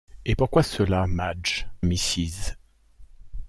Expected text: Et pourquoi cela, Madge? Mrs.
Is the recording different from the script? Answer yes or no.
no